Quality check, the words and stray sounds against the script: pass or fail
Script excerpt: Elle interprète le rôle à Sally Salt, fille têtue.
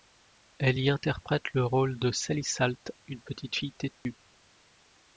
fail